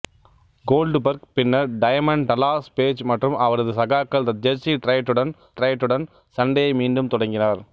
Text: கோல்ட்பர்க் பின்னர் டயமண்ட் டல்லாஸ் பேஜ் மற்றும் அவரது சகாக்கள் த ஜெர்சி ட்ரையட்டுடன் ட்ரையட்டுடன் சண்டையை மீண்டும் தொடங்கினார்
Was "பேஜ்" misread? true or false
false